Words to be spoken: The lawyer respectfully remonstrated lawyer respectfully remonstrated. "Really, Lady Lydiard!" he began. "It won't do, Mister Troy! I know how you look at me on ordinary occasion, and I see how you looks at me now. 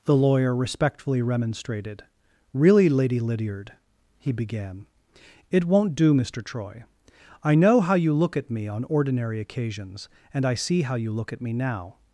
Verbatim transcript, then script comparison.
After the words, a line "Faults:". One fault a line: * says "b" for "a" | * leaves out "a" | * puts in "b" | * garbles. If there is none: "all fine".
The lawyer respectfully remonstrated. "Really, Lady Lydiard!" he began. "It won't do, Mister Troy! I know how you look at me on ordinary occasions, and I see how you look at me now.
Faults:
* leaves out "lawyer respectfully remonstrated"
* says "occasions" for "occasion"
* says "look" for "looks"